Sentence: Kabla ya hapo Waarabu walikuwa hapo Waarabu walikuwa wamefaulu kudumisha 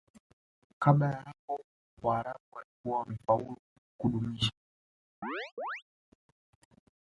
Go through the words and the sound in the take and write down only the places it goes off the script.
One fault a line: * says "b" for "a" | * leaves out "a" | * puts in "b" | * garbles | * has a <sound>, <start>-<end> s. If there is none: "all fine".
* leaves out "hapo Waarabu walikuwa"
* has a chirp, 5.2-5.8 s